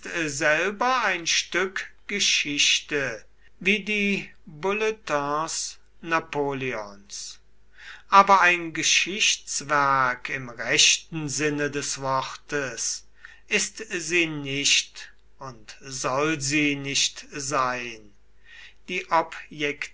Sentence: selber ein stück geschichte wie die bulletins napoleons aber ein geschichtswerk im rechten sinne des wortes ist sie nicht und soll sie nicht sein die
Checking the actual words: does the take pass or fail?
pass